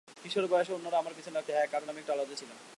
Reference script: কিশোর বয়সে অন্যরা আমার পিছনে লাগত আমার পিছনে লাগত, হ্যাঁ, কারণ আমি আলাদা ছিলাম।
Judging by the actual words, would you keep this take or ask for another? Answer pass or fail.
fail